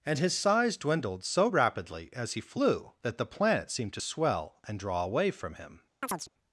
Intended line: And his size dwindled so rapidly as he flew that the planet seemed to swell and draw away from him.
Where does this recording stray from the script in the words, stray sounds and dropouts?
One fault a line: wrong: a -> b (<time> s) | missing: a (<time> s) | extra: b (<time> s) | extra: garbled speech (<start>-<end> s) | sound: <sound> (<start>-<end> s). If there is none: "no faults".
sound: chirp (6.0-6.3 s)